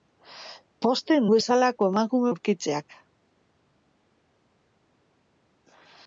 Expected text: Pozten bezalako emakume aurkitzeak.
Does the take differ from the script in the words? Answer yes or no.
no